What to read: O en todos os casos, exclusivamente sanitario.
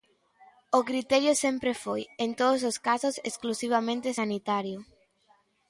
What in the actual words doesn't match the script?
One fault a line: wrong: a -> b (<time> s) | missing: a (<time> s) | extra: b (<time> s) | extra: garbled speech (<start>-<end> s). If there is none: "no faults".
extra: criterio sempre foi (0.9 s)